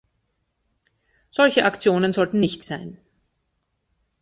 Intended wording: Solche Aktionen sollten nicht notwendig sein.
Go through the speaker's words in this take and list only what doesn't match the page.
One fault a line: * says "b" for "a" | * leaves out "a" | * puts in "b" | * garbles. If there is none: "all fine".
* leaves out "notwendig"